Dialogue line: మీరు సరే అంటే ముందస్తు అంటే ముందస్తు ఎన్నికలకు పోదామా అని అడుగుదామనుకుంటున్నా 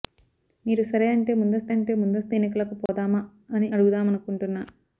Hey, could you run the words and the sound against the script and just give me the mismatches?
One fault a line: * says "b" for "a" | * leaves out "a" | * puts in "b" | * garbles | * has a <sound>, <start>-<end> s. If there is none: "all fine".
* has a dropout, 2.9-2.9 s